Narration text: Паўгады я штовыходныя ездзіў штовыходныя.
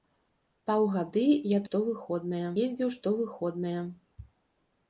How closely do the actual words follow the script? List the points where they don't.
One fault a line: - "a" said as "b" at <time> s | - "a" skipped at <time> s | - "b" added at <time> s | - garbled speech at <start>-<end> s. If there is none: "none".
none